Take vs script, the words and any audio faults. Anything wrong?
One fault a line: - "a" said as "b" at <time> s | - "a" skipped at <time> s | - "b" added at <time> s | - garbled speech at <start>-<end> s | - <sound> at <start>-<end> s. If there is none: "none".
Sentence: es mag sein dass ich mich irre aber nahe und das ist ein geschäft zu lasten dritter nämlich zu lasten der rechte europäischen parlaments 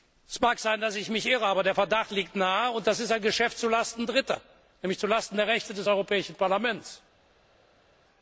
- "der verdacht liegt" added at 1.6 s
- "des" added at 5.7 s